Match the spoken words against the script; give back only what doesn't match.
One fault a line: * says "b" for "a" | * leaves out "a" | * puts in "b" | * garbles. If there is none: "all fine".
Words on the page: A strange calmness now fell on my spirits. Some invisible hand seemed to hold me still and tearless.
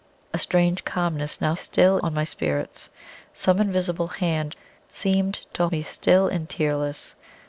* says "still" for "fell"
* leaves out "hold"